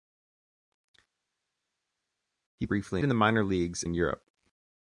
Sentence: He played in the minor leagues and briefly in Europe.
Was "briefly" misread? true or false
true